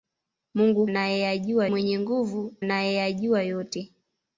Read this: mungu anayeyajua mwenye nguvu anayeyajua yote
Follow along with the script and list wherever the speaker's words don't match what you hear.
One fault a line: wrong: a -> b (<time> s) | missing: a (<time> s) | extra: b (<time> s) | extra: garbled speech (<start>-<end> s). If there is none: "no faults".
no faults